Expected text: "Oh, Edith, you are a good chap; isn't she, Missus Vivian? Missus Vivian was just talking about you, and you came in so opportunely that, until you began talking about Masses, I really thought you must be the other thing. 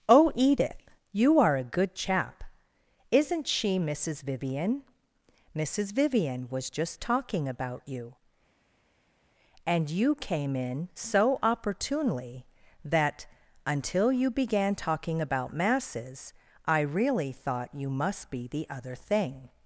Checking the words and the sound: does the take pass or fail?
pass